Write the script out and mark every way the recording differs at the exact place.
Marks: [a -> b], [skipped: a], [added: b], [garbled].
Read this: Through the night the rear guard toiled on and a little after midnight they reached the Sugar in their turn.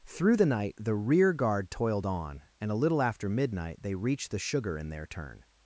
Through the night the rear guard toiled on and a little after midnight they reached the Sugar in their turn.